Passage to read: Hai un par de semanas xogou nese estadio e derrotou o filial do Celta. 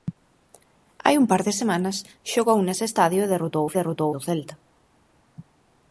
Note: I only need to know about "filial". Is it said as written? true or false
false